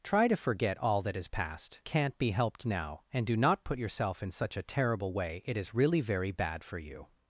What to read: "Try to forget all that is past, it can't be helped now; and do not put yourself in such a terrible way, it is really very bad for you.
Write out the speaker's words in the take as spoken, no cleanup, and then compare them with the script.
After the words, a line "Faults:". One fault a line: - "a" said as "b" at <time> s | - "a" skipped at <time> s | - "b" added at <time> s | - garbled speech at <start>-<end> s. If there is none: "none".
"Try to forget all that is past, can't be helped now; and do not put yourself in such a terrible way, it is really very bad for you.
Faults:
- "it" skipped at 1.8 s